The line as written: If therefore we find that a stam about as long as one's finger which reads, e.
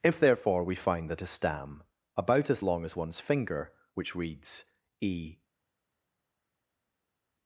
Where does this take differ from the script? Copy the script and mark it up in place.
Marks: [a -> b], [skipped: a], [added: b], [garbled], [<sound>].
If therefore we find that a stam about as long as one's finger which reads, e.